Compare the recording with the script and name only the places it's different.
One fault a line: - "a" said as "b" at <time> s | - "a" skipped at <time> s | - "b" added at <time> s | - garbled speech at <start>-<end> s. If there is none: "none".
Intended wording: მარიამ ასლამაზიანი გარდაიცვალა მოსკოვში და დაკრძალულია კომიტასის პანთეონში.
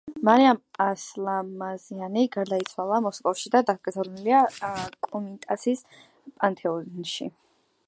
none